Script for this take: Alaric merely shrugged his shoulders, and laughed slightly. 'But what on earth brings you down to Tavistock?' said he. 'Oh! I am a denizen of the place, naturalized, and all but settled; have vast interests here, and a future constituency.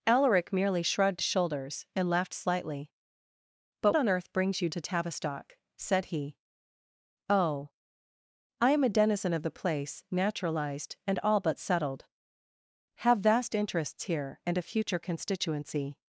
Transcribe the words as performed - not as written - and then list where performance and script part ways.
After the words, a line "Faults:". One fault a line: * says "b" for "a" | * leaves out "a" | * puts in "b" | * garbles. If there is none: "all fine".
Alaric merely shrugged shoulders, and laughed slightly. 'But on earth brings you to Tavistock?' said he. 'Oh! I am a denizen of the place, naturalized, and all but settled; have vast interests here, and a future constituency.
Faults:
* leaves out "his"
* leaves out "what"
* leaves out "down"